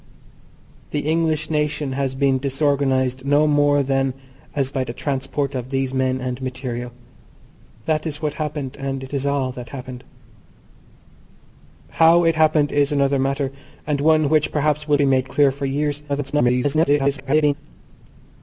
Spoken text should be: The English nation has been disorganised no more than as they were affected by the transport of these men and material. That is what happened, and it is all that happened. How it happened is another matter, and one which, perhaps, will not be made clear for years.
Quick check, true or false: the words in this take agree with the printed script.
false